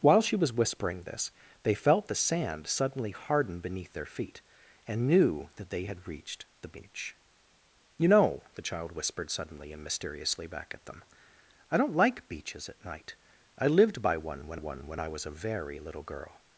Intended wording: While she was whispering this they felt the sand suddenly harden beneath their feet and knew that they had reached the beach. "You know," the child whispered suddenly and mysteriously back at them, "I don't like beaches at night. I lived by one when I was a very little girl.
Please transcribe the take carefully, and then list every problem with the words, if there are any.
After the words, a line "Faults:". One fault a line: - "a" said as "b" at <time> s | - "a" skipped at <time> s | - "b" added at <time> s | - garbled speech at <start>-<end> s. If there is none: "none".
While she was whispering this they felt the sand suddenly harden beneath their feet and knew that they had reached the beach. "You know," the child whispered suddenly and mysteriously back at them, "I don't like beaches at night. I lived by one when one when I was a very little girl.
Faults:
- "one when" added at 14.6 s